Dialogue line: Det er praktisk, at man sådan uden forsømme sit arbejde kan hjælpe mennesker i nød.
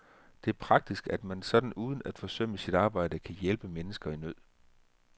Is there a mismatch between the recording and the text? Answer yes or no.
yes